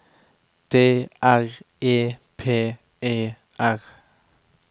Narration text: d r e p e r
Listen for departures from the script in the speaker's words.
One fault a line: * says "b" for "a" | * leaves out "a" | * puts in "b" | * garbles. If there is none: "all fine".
all fine